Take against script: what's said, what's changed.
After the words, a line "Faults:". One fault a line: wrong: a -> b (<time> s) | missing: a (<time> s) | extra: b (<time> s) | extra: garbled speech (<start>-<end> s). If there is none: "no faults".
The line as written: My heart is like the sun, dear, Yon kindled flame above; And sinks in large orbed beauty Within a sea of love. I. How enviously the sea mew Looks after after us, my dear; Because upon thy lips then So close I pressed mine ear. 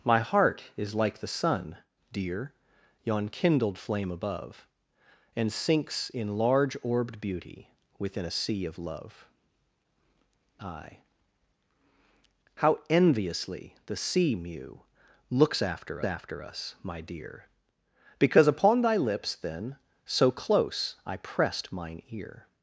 My heart is like the sun, dear, Yon kindled flame above; And sinks in large orbed beauty Within a sea of love. I. How enviously the sea mew Looks after after us, my dear; Because upon thy lips then So close I pressed mine ear.
Faults:
no faults